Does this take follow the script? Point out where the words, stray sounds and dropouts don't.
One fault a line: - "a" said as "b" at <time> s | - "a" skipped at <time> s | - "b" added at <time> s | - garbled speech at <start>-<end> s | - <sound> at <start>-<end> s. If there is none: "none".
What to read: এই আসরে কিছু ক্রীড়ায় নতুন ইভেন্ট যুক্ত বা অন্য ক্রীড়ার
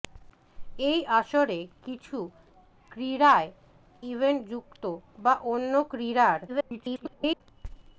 - "নতুন" skipped at 3.5 s
- garbled speech at 6.5-7.4 s